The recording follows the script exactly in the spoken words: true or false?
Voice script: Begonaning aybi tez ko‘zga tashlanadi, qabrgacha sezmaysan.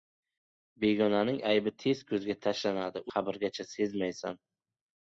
true